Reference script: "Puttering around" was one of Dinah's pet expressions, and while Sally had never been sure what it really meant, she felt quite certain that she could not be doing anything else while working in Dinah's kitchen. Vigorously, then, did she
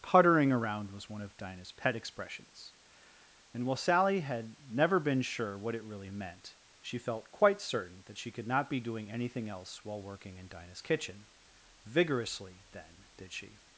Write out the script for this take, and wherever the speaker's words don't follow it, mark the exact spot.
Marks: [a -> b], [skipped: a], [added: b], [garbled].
"Puttering around" was one of Dinah's pet expressions, and while Sally had never been sure what it really meant, she felt quite certain that she could not be doing anything else while working in Dinah's kitchen. Vigorously, then, did she